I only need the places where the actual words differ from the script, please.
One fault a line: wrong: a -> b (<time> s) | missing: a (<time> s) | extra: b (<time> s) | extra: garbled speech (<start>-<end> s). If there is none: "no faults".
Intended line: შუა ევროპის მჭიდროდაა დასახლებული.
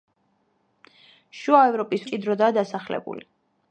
no faults